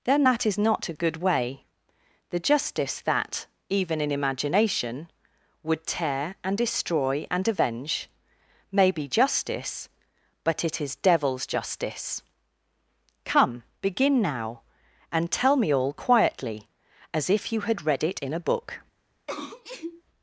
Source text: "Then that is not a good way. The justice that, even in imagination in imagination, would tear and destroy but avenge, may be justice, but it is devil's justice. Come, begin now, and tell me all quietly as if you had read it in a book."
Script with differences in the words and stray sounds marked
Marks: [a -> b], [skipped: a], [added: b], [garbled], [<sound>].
"Then that is not a good way. The justice that, even in imagination [skipped: in imagination,] would tear and destroy [but -> and] avenge, may be justice, but it is devil's justice. Come, begin now, and tell me all quietly as if you had read it in a book." [sneeze]